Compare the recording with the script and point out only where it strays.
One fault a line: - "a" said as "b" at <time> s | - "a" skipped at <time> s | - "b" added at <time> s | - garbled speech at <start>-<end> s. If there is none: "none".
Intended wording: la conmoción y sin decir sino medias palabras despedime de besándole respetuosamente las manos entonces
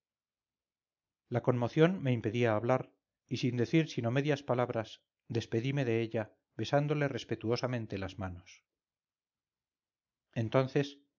- "me impedía hablar" added at 2.0 s
- "ella" added at 6.0 s